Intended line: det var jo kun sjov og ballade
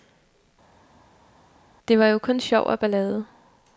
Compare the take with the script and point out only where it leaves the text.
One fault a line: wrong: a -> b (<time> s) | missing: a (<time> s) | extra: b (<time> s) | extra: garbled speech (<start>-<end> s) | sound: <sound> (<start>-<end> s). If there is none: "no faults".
no faults